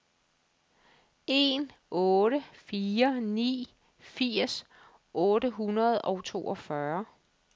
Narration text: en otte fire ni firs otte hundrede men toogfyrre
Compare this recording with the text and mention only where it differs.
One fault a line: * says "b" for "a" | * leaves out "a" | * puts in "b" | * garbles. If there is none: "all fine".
* says "og" for "men"